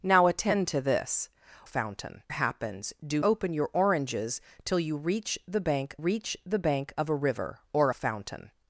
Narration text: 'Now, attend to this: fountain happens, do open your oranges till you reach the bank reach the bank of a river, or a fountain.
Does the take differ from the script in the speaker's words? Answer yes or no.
no